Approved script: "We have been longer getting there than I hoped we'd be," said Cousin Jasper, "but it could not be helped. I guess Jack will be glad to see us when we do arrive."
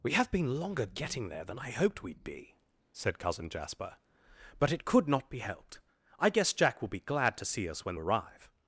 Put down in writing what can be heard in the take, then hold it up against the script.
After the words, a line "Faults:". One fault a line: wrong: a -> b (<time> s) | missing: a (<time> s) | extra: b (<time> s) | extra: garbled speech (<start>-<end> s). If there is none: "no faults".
"We have been longer getting there than I hoped we'd be," said Cousin Jasper, "but it could not be helped. I guess Jack will be glad to see us when arrive."
Faults:
missing: we do (8.0 s)